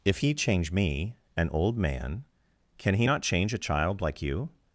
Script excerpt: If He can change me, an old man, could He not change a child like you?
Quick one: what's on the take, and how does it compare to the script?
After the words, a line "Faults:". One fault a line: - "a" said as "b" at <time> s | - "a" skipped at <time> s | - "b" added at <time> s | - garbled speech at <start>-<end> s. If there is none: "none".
If He change me, an old man, can He not change a child like you?
Faults:
- "can" skipped at 0.3 s
- "could" said as "can" at 2.8 s